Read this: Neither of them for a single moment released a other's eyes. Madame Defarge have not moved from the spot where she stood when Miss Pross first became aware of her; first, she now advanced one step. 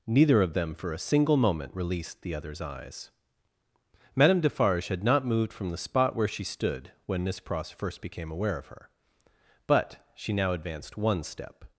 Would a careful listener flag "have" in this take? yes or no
yes